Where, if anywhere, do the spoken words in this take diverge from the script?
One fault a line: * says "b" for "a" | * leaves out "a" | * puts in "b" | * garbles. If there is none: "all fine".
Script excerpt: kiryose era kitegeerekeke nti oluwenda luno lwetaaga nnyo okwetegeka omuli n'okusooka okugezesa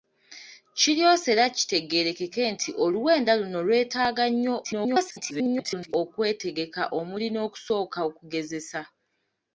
* garbles